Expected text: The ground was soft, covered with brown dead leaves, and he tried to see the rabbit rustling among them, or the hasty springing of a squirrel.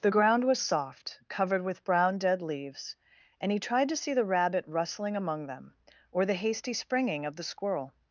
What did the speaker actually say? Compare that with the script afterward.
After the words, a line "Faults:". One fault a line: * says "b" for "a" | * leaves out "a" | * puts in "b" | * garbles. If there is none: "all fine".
The ground was soft, covered with brown dead leaves, and he tried to see the rabbit rustling among them, or the hasty springing of the squirrel.
Faults:
* says "the" for "a"